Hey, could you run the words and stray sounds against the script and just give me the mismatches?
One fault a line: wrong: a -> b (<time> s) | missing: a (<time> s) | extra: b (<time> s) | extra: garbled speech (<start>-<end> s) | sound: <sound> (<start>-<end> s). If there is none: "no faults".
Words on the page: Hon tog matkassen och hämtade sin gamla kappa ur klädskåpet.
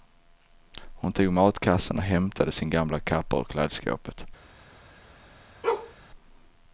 sound: bark (5.6-5.9 s)